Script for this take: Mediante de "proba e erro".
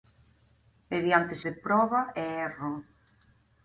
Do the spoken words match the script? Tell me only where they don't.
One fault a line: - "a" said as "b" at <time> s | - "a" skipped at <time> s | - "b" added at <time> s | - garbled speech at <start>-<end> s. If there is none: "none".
none